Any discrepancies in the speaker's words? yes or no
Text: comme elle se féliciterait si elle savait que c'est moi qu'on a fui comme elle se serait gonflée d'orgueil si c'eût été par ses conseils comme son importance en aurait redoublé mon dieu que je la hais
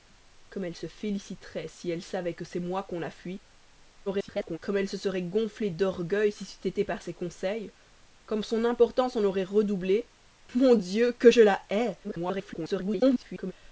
yes